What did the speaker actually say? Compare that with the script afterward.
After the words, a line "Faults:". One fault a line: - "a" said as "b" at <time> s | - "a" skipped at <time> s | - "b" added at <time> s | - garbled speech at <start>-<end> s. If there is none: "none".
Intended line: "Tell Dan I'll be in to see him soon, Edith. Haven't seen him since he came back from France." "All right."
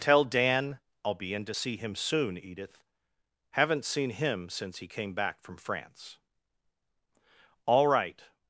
"Tell Dan I'll be in to see him soon, Edith. Haven't seen him since he came back from France." "All right."
Faults:
none